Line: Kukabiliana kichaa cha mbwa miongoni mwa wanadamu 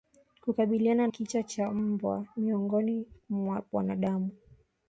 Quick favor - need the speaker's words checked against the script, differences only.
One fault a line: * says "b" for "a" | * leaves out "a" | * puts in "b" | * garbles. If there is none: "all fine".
all fine